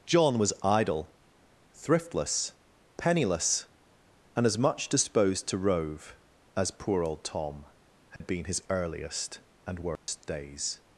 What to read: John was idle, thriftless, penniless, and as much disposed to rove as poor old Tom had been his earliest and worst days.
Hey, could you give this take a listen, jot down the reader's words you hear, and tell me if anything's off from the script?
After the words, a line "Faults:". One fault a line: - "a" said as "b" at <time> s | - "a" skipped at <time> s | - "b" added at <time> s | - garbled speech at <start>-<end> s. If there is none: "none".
John was idle, thriftless, penniless, and as much disposed to rove as poor old Tom had been his earliest and worst days.
Faults:
none